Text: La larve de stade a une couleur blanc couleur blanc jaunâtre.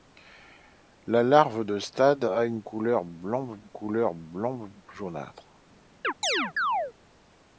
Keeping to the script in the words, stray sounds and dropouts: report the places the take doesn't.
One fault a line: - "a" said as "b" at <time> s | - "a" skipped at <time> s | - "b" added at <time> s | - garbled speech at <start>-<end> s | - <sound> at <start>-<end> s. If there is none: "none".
- chirp at 6.0-6.9 s